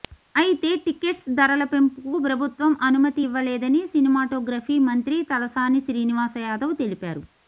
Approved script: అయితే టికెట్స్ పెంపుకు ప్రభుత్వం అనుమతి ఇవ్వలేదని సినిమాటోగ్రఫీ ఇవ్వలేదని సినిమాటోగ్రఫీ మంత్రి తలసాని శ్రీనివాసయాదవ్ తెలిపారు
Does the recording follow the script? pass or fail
fail